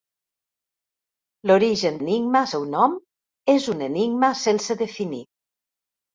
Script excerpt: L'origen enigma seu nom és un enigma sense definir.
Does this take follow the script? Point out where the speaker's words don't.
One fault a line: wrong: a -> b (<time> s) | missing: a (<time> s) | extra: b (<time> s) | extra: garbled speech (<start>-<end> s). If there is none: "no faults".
no faults